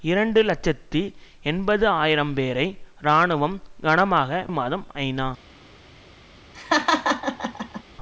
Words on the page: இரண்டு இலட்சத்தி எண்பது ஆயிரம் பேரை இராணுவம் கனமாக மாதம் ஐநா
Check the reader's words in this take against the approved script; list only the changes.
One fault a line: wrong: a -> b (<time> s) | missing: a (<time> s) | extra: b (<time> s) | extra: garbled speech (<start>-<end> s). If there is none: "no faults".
no faults